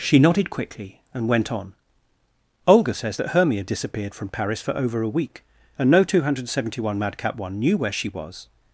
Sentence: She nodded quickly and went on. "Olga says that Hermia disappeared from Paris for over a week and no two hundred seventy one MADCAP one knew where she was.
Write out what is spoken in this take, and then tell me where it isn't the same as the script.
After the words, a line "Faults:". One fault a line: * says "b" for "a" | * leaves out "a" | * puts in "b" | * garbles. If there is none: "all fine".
She nodded quickly and went on. "Olga says that Hermia disappeared from Paris for over a week and no two hundred seventy one MADCAP one knew where she was.
Faults:
all fine